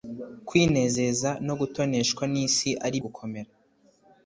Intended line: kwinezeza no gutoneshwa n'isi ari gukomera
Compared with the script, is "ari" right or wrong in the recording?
right